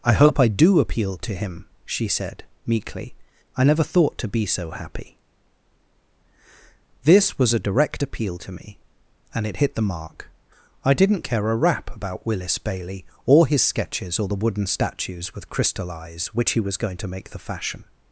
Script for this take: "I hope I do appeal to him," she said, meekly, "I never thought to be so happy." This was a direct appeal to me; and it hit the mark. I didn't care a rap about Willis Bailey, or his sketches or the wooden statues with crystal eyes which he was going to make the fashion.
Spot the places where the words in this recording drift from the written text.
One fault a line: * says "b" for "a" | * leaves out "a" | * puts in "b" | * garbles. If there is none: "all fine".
all fine